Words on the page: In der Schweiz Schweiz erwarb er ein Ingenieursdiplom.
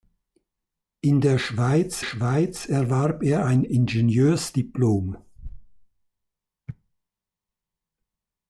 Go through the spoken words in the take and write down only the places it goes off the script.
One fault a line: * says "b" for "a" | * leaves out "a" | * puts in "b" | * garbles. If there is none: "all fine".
all fine